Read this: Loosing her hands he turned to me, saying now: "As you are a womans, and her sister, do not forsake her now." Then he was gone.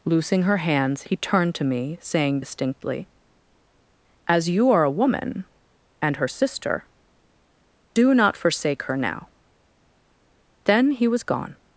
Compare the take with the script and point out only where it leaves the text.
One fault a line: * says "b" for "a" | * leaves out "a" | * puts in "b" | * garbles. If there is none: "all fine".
* says "distinctly" for "now"
* says "woman" for "womans"